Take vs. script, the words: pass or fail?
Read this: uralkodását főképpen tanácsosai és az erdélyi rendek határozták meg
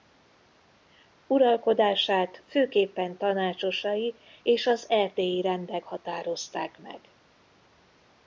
pass